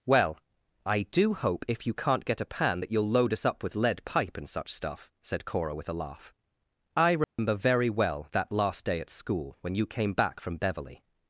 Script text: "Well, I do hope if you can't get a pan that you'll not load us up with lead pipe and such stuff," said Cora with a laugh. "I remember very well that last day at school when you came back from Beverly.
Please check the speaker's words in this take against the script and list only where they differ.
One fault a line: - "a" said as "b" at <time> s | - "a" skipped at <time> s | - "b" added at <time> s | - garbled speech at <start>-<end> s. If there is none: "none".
- "not" skipped at 3.1 s